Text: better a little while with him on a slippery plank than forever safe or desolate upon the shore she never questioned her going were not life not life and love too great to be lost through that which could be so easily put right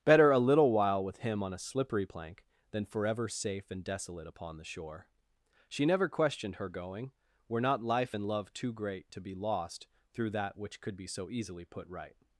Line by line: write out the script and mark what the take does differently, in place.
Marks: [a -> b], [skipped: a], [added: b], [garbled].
better a little while with him on a slippery plank than forever safe [or -> and] desolate upon the shore she never questioned her going were not life [skipped: not life] and love too great to be lost through that which could be so easily put right